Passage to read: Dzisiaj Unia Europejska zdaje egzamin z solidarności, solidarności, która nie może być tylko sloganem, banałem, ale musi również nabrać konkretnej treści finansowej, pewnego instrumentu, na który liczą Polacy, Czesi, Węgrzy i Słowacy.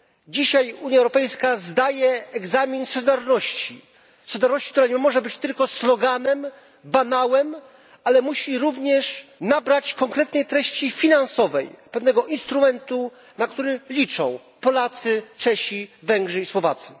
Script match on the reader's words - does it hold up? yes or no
yes